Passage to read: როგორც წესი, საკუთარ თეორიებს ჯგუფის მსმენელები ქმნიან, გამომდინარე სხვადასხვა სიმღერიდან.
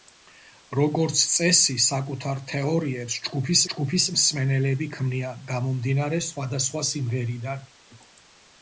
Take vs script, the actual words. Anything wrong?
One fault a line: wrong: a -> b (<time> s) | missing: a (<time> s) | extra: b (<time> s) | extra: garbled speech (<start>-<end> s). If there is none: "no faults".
extra: ჯგუფის (3.7 s)